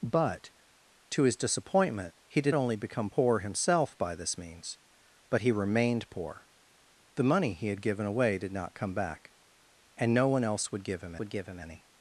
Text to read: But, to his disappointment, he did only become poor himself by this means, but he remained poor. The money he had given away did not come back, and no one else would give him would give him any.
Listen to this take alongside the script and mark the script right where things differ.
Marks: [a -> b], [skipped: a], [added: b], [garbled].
But, to his disappointment, he did only become poor himself by this means, but he remained poor. The money he had given away did not come back, and no one else would give him would give him any.